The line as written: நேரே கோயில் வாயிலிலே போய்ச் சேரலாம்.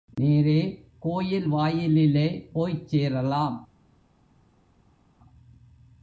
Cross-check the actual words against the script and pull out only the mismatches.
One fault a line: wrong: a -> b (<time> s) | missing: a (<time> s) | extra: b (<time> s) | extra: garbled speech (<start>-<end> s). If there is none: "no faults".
no faults